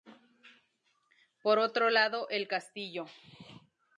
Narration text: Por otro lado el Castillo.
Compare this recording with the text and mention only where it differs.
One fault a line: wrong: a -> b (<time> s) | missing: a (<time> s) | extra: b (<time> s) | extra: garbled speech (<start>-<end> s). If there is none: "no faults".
no faults